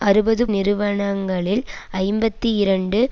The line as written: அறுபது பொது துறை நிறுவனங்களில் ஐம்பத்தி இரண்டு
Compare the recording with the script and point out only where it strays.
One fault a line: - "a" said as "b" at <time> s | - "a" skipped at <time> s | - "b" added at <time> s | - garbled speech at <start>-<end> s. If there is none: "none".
- "பொது துறை" skipped at 0.4 s